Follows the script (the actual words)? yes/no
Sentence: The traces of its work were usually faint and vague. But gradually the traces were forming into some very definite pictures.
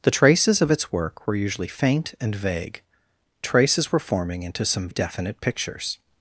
no